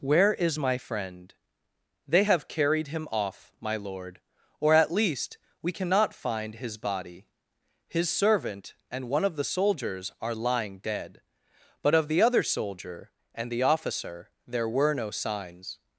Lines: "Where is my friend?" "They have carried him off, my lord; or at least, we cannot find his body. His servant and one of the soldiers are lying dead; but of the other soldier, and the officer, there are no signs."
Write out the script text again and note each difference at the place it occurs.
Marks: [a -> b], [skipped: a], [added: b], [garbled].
"Where is my friend?" "They have carried him off, my lord; or at least, we cannot find his body. His servant and one of the soldiers are lying dead; but of the other soldier, and the officer, there [are -> were] no signs."